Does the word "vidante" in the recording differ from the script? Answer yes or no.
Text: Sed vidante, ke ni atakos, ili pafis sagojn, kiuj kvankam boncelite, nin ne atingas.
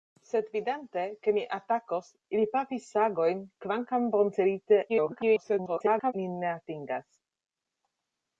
no